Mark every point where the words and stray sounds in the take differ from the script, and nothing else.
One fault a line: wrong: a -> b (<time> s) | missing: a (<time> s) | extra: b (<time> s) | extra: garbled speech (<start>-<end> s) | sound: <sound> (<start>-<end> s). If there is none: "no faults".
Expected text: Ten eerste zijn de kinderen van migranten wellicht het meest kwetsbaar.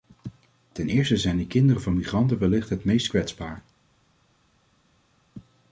no faults